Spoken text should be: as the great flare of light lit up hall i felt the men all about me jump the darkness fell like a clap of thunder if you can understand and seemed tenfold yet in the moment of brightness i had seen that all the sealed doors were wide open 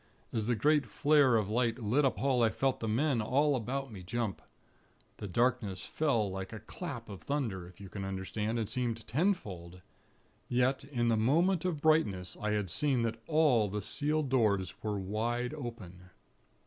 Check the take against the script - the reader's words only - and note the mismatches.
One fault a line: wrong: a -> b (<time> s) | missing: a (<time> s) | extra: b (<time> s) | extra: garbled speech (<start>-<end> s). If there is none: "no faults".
no faults